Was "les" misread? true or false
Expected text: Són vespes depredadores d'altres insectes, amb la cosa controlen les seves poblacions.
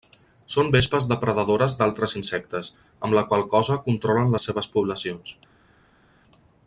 false